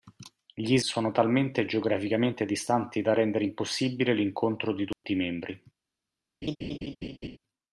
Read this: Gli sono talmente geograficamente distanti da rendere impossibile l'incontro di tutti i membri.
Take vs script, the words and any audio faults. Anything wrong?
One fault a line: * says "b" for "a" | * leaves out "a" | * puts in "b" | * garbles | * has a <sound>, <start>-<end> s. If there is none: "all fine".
* has a dropout, 4.9-5.0 s
* has a laugh, 6.4-7.4 s